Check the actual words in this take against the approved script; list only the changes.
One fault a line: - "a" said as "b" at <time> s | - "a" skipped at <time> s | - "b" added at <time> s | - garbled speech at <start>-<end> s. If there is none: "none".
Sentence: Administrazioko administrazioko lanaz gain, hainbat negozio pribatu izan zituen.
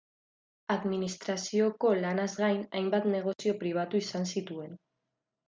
- "administrazioko" skipped at 1.9 s